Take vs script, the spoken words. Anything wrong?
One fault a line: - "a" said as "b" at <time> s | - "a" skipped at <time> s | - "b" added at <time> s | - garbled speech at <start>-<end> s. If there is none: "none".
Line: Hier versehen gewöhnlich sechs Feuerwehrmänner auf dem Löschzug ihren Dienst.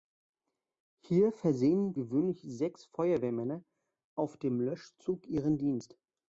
none